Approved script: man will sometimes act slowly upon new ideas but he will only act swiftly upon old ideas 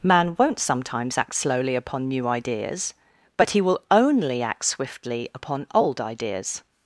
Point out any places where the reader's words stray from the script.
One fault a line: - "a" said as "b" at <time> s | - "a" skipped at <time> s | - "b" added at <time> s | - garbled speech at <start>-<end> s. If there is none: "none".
- "will" said as "won't" at 0.4 s